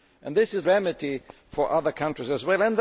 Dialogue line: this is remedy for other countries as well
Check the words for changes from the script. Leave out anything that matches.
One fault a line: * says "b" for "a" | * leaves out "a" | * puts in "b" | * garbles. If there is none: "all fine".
all fine